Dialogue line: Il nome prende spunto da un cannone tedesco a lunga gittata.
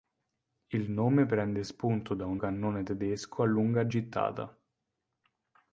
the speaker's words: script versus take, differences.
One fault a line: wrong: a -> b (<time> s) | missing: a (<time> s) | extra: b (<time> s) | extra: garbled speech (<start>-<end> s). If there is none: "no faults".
no faults